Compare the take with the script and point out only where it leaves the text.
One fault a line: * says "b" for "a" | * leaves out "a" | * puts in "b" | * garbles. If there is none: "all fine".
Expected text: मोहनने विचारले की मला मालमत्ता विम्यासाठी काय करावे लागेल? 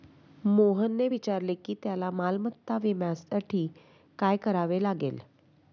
* says "त्याला" for "मला"